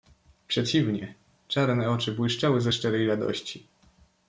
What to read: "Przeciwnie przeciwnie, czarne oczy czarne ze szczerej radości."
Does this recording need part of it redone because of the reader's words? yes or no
yes